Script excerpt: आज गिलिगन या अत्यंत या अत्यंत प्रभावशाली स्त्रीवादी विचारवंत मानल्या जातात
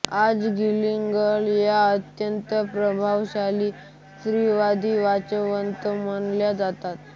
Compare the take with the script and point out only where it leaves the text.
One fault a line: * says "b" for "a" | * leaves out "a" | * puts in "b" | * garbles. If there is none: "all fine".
* leaves out "या अत्यंत"